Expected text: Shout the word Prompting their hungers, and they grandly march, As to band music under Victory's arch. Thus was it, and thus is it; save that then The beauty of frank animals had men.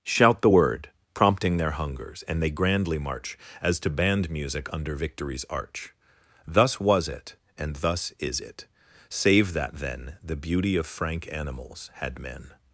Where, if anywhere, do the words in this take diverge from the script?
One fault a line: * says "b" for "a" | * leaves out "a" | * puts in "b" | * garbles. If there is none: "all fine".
all fine